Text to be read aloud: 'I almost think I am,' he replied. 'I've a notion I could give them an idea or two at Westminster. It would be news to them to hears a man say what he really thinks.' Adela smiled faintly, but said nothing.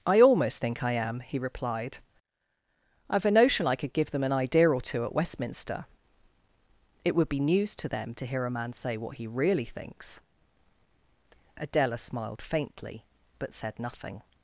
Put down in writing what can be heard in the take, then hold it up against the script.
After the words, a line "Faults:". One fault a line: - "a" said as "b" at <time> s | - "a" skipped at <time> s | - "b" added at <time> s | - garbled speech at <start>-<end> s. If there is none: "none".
'I almost think I am,' he replied. 'I've a notion I could give them an idea or two at Westminster. It would be news to them to hear a man say what he really thinks.' Adela smiled faintly, but said nothing.
Faults:
- "hears" said as "hear" at 8.3 s